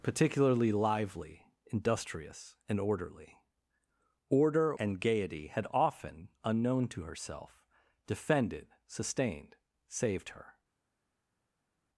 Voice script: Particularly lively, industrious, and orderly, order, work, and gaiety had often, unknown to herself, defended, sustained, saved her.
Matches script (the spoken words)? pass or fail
fail